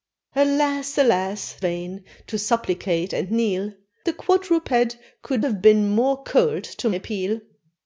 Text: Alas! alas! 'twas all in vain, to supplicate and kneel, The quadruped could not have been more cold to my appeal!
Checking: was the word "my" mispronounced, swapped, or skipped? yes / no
yes